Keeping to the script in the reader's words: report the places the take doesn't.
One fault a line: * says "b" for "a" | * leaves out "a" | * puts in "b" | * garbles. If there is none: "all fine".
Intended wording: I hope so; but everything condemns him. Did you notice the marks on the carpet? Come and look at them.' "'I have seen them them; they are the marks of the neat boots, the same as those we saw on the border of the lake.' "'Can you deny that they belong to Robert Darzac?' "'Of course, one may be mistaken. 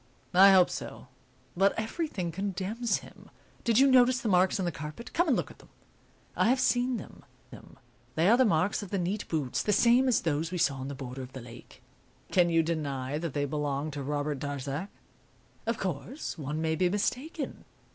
all fine